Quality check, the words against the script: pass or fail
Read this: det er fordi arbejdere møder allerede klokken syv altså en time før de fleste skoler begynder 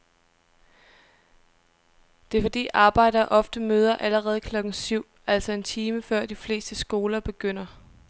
fail